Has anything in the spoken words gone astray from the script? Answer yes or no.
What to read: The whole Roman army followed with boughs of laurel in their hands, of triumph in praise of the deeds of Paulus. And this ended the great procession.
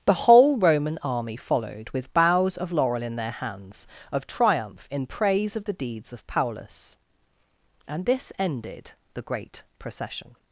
no